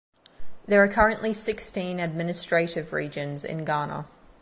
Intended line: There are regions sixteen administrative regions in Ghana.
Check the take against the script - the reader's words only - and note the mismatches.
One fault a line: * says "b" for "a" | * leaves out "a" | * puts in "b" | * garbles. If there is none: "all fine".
* says "currently" for "regions"